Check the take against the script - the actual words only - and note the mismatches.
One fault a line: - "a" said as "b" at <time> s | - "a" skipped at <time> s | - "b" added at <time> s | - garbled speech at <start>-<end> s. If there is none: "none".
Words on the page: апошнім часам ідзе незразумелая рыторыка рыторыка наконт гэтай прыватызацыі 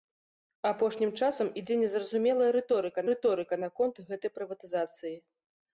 none